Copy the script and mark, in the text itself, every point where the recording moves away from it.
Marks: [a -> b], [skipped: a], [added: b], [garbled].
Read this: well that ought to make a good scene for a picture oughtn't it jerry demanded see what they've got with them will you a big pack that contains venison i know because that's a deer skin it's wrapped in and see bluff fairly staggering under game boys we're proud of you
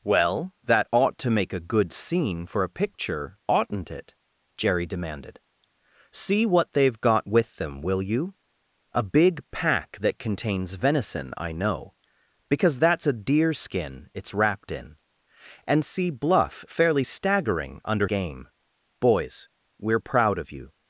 well that ought to make a good scene for a picture oughtn't it jerry demanded see what they've got with them will you a big pack that contains venison i know because that's a deer skin it's wrapped in and see bluff fairly staggering under game boys we're proud of you